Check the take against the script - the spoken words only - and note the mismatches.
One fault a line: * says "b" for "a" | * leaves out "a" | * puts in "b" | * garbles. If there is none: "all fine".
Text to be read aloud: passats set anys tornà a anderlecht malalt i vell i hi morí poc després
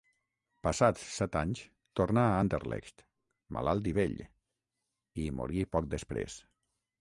all fine